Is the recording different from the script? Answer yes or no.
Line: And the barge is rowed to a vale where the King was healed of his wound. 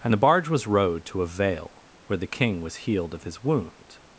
yes